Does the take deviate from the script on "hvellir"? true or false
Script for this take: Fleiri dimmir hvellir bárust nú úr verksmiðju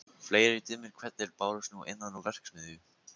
false